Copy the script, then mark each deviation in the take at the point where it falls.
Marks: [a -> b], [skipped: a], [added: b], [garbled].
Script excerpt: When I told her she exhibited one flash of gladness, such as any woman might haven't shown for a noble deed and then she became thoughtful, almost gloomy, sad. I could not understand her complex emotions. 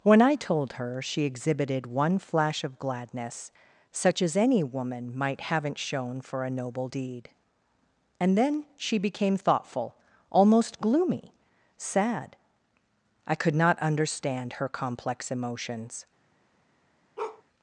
When I told her she exhibited one flash of gladness, such as any woman might haven't shown for a noble deed and then she became thoughtful, almost gloomy, sad. I could not understand her complex emotions.